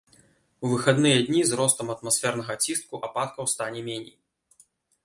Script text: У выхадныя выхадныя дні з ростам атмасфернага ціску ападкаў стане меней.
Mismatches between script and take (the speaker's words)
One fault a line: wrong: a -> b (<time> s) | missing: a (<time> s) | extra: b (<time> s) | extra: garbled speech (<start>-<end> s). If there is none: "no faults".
missing: выхадныя (1.2 s)